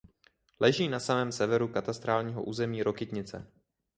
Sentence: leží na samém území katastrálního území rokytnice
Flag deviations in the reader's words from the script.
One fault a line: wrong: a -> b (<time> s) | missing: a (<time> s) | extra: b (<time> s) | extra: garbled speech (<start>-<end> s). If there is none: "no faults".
wrong: území -> severu (1.3 s)